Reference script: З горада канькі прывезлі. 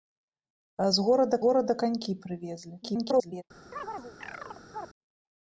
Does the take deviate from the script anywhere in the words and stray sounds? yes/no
yes